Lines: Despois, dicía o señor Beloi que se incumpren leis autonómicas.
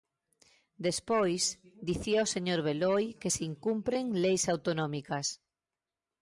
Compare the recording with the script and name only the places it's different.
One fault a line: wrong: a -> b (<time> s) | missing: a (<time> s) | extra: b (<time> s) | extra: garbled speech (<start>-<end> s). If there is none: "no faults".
no faults